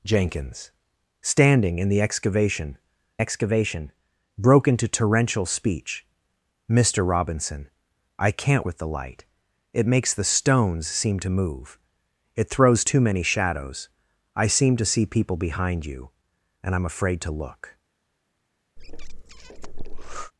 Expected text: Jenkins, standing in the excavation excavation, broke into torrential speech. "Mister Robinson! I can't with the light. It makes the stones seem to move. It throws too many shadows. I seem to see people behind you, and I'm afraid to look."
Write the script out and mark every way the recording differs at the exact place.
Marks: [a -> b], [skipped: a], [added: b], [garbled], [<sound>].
Jenkins, standing in the excavation excavation, broke into torrential speech. "Mister Robinson! I can't with the light. It makes the stones seem to move. It throws too many shadows. I seem to see people behind you, and I'm afraid to look." [breath]